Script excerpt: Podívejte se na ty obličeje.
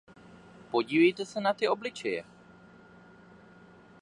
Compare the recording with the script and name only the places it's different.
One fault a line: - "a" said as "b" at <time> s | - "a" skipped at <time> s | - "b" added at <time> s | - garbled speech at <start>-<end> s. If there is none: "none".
none